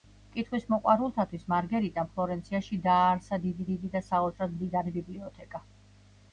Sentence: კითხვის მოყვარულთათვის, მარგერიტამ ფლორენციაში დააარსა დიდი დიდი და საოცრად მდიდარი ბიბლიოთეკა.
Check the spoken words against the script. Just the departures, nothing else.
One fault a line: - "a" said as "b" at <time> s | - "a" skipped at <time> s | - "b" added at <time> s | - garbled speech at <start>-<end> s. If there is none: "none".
none